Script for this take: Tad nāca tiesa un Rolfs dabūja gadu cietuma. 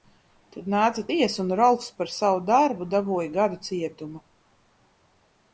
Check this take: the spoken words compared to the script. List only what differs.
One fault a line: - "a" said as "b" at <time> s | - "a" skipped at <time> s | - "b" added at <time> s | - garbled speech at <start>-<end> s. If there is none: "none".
- "par savu darbu" added at 2.0 s